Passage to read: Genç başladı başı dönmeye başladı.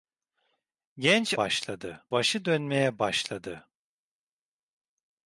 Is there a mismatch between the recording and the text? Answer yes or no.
no